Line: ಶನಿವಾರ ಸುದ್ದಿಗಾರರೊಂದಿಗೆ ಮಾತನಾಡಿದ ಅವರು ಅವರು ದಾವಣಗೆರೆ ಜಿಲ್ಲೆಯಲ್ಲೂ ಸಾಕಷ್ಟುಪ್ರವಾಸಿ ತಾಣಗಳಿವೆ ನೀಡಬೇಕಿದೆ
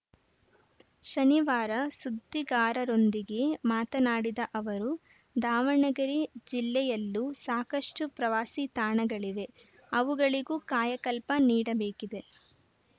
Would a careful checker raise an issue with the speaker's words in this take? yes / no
yes